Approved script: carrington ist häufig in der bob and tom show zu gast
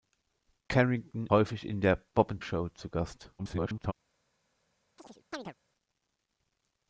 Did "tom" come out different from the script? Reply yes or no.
yes